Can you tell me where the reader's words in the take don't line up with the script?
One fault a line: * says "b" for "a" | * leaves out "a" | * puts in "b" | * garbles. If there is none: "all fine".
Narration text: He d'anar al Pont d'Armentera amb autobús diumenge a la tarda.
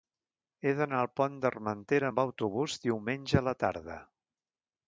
all fine